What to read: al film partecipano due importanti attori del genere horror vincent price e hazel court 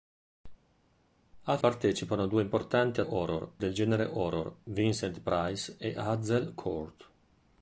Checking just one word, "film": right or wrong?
wrong